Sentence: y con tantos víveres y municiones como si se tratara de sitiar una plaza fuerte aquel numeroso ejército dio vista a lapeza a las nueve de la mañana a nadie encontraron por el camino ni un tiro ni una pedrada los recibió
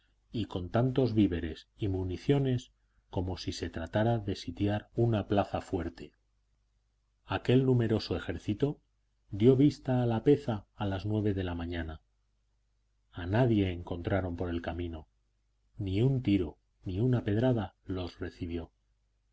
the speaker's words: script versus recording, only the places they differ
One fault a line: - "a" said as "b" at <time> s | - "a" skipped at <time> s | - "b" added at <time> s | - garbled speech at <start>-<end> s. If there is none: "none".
none